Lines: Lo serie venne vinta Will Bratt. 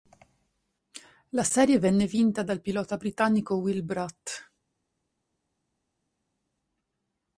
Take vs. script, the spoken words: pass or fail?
fail